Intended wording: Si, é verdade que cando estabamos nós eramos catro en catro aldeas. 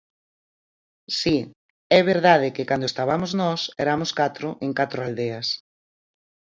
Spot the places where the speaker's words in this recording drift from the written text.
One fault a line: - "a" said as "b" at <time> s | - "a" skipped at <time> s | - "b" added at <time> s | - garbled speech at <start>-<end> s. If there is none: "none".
none